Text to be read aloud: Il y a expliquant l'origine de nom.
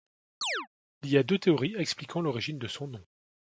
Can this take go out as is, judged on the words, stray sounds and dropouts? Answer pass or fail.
fail